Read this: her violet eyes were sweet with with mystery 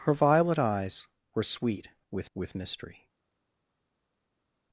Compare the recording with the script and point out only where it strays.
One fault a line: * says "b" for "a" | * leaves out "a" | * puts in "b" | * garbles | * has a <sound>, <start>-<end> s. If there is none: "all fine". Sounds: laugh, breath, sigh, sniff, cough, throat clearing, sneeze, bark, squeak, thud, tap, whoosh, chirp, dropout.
all fine